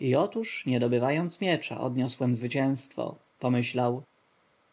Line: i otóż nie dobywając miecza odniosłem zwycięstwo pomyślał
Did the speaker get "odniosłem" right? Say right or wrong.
right